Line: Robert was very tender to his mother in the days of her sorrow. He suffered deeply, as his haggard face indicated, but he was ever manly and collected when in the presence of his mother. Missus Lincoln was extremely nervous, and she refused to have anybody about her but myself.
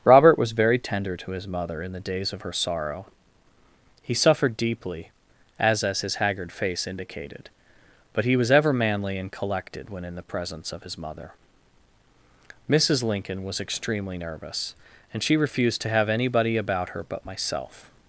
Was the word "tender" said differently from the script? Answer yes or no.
no